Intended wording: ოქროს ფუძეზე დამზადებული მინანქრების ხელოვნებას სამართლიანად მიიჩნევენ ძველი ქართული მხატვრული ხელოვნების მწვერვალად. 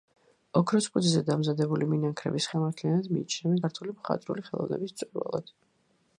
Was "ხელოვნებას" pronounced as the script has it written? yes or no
no